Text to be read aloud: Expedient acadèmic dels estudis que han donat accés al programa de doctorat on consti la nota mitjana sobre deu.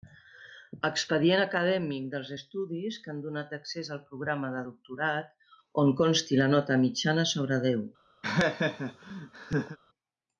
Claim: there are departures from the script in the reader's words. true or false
false